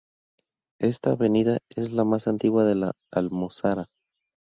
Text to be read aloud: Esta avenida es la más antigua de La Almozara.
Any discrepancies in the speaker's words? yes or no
no